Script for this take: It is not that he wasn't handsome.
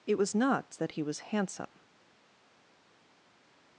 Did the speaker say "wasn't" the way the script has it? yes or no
no